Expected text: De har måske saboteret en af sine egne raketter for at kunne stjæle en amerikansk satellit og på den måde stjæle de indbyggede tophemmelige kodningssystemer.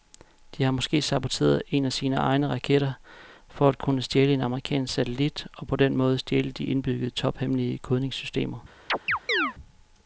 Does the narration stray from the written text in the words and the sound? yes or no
yes